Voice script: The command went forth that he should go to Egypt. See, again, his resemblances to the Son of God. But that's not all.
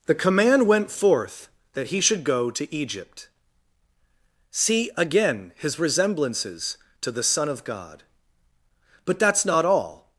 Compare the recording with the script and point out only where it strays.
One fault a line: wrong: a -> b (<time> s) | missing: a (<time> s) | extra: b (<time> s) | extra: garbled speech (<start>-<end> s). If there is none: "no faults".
no faults